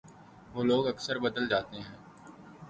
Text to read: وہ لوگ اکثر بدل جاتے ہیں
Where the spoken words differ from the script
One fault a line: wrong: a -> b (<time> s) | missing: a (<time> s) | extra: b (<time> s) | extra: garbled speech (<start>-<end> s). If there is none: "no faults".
no faults